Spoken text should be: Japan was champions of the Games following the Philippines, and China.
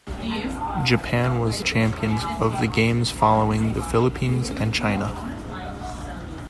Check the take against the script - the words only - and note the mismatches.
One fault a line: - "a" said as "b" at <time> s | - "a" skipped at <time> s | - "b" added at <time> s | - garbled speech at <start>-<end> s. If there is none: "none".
none